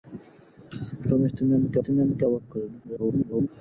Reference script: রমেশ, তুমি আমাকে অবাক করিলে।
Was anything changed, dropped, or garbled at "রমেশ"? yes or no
no